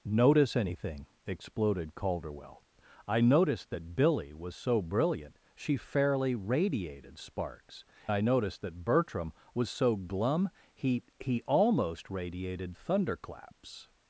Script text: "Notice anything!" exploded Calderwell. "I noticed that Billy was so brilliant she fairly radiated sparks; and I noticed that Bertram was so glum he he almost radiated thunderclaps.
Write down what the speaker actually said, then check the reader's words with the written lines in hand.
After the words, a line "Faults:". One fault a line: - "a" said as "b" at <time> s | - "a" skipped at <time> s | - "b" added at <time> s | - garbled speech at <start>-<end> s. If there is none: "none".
"Notice anything!" exploded Calderwell. "I noticed that Billy was so brilliant she fairly radiated sparks; I noticed that Bertram was so glum he he almost radiated thunderclaps.
Faults:
- "and" skipped at 7.8 s